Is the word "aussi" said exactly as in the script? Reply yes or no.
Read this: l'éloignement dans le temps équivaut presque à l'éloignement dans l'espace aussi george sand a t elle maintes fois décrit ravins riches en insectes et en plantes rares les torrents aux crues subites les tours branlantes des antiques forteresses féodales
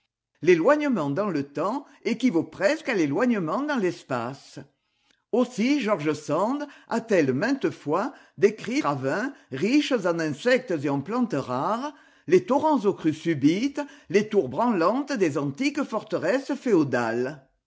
yes